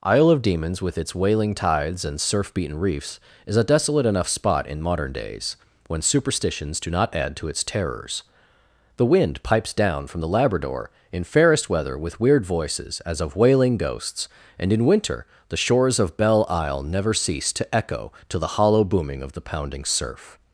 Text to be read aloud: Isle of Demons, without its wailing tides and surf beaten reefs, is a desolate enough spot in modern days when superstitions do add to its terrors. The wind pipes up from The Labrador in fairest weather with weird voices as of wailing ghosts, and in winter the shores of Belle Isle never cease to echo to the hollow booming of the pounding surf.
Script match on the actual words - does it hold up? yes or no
no